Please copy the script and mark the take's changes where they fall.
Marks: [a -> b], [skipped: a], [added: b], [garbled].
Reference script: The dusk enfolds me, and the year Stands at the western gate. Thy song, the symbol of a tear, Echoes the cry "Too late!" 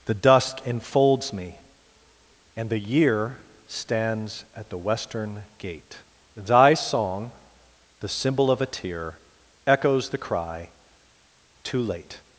The dusk enfolds me, and the year Stands at the western gate. Thy song, the symbol of a tear, Echoes the cry "Too late!"